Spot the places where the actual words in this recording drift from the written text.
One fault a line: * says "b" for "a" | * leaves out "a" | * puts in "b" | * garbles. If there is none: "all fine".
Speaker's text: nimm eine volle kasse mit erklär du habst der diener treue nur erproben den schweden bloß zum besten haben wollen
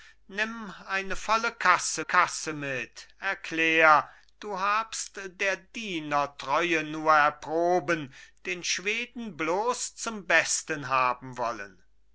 * puts in "kasse"